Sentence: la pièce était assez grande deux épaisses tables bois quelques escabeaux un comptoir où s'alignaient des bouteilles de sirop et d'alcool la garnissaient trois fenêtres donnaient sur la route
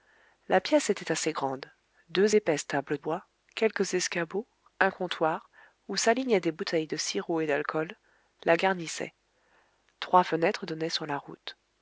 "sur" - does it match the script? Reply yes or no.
yes